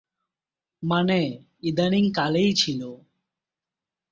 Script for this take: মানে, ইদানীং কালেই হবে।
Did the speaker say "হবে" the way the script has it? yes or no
no